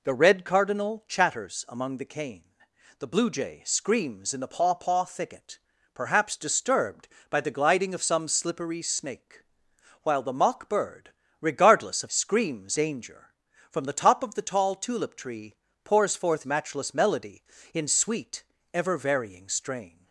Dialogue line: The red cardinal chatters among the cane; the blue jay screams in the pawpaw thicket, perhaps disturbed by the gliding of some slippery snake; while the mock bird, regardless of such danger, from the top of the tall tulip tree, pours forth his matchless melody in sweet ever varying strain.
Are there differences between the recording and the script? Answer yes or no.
yes